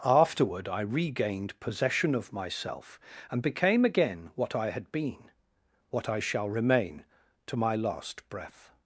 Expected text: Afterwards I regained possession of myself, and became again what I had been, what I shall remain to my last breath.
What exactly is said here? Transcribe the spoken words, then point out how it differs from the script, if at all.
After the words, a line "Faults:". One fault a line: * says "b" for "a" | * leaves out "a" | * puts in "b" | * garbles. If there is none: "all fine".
Afterward I regained possession of myself, and became again what I had been, what I shall remain to my last breath.
Faults:
* says "Afterward" for "Afterwards"